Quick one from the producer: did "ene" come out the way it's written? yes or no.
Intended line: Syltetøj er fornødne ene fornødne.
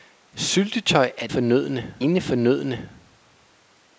yes